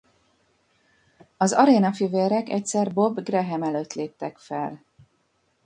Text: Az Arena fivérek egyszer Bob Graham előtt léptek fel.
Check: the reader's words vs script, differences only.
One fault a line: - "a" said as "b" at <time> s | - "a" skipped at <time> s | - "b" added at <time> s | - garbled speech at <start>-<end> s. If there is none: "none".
none